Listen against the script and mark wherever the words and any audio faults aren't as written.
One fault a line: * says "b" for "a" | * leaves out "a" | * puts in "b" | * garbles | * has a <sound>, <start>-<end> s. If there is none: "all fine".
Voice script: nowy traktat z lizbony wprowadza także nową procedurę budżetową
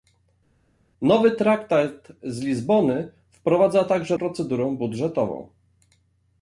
* leaves out "nową"